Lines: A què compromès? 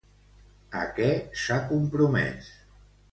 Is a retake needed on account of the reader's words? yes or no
yes